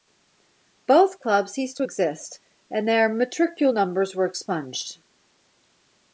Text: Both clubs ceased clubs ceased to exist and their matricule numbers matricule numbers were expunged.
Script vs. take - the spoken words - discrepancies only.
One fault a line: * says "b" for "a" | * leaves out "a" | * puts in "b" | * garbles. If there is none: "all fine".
* leaves out "clubs ceased"
* leaves out "matricule numbers"